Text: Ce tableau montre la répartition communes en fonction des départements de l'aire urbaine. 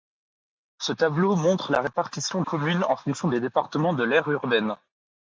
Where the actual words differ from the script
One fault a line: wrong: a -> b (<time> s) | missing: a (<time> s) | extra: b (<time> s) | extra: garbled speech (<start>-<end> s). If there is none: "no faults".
no faults